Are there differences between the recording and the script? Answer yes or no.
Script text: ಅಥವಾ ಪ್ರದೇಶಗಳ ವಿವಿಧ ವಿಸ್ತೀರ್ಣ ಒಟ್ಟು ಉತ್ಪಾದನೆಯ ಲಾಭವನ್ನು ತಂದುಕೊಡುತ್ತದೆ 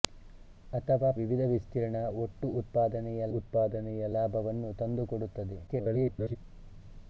yes